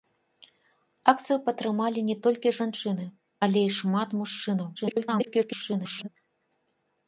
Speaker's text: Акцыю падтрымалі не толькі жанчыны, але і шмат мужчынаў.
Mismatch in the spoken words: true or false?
true